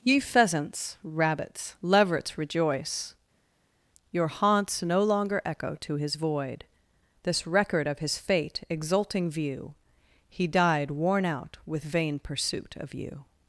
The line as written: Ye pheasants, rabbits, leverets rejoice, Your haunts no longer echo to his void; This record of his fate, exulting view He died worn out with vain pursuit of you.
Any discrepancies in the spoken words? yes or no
no